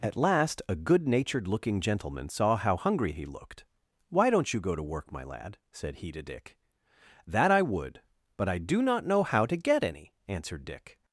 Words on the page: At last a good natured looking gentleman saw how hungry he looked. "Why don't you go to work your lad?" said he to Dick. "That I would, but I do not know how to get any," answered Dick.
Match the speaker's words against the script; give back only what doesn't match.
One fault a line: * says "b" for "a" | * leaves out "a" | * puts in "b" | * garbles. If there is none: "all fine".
* says "my" for "your"